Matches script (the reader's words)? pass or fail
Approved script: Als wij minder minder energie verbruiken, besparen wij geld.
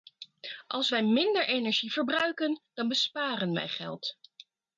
fail